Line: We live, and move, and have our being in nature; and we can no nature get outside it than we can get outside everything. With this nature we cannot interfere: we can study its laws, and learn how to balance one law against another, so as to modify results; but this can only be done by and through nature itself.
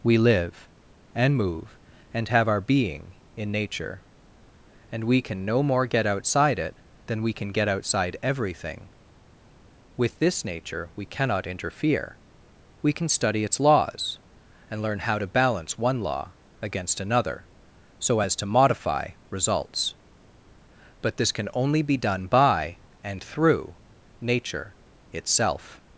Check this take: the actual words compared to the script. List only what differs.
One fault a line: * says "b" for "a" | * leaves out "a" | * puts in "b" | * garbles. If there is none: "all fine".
* says "more" for "nature"